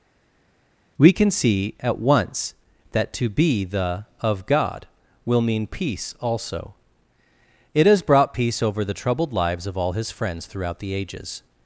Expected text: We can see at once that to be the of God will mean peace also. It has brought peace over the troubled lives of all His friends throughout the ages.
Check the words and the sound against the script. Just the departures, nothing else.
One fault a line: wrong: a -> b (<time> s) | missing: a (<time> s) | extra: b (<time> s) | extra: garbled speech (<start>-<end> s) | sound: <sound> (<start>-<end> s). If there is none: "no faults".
no faults